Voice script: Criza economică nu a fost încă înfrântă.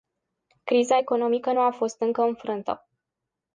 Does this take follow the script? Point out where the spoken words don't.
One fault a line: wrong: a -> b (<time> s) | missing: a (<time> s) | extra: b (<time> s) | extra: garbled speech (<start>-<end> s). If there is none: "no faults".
no faults